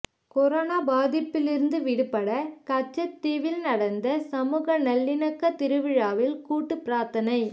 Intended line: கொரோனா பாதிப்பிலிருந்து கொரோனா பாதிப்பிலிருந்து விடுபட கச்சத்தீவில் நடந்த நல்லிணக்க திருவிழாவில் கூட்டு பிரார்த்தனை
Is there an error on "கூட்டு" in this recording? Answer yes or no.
no